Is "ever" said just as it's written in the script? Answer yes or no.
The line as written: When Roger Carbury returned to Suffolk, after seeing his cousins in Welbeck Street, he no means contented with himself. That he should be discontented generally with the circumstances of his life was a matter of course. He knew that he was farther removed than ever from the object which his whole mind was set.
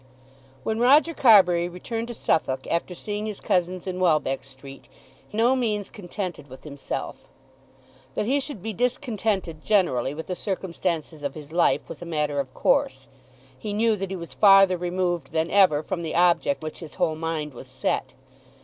yes